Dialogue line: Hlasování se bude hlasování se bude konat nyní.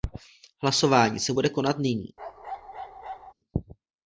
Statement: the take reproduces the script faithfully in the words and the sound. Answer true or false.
false